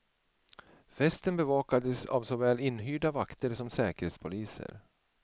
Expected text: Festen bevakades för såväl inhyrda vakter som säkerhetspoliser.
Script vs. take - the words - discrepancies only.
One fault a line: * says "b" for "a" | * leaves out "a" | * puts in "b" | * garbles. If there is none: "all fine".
* says "av" for "för"